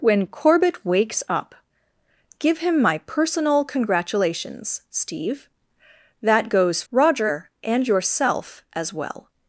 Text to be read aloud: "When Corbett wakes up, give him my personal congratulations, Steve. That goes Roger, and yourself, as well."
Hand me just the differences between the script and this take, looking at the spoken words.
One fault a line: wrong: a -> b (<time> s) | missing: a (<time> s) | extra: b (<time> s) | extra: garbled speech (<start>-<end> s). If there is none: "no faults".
no faults